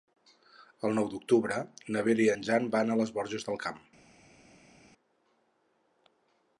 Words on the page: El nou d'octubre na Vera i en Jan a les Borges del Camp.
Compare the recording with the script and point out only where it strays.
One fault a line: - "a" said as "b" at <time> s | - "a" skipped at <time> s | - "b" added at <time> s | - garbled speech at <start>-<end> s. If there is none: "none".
- "van" added at 2.8 s